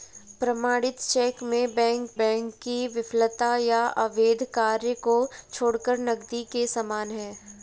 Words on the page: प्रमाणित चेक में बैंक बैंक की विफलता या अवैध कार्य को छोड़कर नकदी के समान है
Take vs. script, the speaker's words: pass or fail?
pass